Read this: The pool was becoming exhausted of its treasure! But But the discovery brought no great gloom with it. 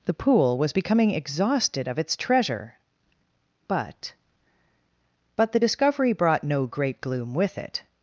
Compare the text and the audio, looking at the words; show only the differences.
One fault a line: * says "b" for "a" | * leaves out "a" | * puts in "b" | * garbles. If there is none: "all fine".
all fine